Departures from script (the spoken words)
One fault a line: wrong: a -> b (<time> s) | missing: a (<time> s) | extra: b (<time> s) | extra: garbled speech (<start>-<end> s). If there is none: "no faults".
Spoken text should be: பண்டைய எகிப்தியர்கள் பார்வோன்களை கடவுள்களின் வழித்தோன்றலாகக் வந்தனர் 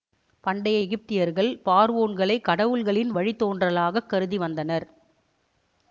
extra: கருதி (4.1 s)